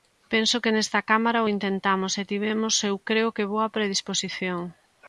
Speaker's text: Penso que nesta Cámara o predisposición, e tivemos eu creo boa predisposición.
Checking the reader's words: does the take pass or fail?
fail